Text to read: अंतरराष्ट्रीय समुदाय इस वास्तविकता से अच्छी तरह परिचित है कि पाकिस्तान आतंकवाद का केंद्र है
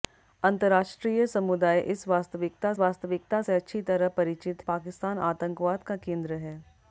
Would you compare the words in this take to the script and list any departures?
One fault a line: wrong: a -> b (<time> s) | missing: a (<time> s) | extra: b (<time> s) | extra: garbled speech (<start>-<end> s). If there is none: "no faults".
extra: वास्तविकता (2.8 s)
missing: है कि (4.7 s)